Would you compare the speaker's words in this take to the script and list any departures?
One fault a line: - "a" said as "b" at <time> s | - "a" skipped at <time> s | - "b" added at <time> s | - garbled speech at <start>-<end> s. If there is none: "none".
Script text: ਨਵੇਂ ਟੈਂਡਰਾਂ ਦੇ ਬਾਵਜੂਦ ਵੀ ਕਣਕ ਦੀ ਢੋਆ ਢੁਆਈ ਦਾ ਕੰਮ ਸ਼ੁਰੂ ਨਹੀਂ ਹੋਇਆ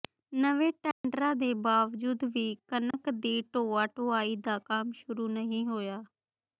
none